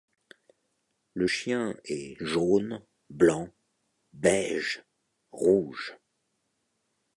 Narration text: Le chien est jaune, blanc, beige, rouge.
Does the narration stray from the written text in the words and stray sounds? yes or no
no